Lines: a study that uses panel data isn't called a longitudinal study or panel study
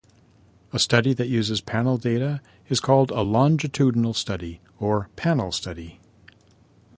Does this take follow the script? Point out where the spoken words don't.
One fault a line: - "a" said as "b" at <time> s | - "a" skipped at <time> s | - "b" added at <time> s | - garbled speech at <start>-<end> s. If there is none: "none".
- "isn't" said as "is" at 2.7 s